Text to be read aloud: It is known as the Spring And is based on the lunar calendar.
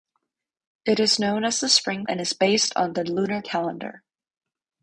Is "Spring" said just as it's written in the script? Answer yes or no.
yes